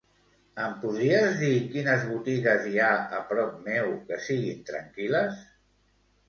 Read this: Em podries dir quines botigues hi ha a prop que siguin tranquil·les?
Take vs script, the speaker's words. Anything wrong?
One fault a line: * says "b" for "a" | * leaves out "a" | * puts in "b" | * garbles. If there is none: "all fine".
* puts in "meu"